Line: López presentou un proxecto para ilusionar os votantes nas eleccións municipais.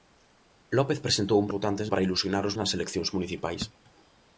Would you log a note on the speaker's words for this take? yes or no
yes